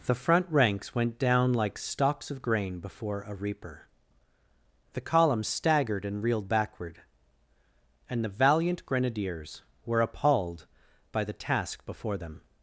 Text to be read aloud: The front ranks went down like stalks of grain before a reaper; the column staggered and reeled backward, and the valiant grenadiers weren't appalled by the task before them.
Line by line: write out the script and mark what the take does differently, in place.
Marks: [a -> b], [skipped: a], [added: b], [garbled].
The front ranks went down like stalks of grain before a reaper; the column staggered and reeled backward, and the valiant grenadiers [weren't -> were] appalled by the task before them.